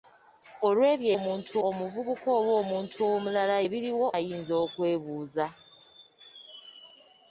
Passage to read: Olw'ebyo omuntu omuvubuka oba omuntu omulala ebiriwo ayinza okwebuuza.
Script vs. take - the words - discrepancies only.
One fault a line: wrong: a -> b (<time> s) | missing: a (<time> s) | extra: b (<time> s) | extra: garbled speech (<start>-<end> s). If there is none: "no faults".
no faults